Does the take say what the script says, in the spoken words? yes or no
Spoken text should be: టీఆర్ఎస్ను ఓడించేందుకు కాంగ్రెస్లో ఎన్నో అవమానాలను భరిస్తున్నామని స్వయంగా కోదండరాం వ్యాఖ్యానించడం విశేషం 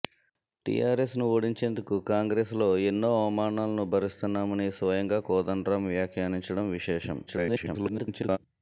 no